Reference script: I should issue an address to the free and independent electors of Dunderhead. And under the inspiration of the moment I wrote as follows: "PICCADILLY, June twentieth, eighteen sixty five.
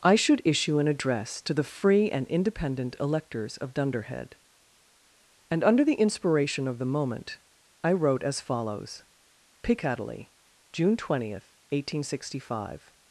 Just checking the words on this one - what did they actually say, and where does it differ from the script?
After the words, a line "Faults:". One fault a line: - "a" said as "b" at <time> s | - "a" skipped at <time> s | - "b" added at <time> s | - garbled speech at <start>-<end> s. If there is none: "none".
I should issue an address to the free and independent electors of Dunderhead. And under the inspiration of the moment I wrote as follows: "PICCADILLY, June twentieth, eighteen sixty five.
Faults:
none